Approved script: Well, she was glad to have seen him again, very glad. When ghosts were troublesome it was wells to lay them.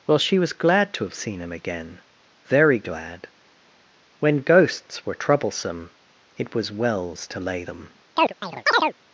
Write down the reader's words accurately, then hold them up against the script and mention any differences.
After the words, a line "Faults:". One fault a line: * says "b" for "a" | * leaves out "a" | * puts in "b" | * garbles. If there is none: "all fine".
Well, she was glad to have seen him again, very glad. When ghosts were troublesome it was wells to lay them.
Faults:
all fine